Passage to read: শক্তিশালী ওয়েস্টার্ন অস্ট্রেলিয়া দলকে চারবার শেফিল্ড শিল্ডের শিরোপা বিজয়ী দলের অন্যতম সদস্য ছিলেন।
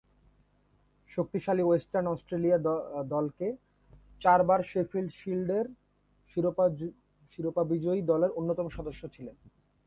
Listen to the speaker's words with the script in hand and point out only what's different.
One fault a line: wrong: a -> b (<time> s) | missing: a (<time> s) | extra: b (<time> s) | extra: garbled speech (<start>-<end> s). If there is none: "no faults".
no faults